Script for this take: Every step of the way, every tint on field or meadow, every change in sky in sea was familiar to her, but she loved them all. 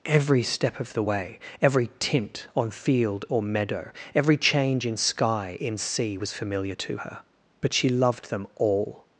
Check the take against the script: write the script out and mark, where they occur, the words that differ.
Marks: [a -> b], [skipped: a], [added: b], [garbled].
Every step of the way, every tint on field or meadow, every change in sky in sea was familiar to her, but she loved them all.